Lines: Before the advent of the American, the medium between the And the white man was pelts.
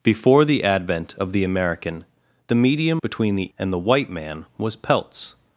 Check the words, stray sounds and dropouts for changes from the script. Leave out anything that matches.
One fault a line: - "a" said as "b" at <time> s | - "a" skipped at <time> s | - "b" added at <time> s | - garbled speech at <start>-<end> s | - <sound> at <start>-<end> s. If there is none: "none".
none